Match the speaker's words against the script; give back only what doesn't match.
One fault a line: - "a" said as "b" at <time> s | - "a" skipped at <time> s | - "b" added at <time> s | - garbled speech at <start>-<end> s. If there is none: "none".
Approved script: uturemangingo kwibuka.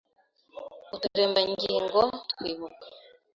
none